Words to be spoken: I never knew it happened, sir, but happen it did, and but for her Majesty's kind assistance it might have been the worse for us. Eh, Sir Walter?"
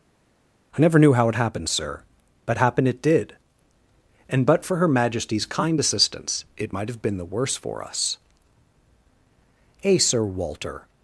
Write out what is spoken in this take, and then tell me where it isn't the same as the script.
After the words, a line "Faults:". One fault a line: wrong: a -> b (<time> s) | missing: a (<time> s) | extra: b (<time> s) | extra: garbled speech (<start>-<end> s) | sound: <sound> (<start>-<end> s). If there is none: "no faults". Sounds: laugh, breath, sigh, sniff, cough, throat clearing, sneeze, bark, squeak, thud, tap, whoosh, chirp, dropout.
I never knew how it happened, sir, but happen it did, and but for her Majesty's kind assistance it might have been the worse for us. Eh, Sir Walter?"
Faults:
extra: how (1.1 s)